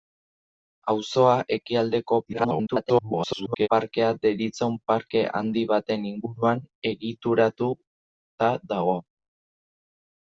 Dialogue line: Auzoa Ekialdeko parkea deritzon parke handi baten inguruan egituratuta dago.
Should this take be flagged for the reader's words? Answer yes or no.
yes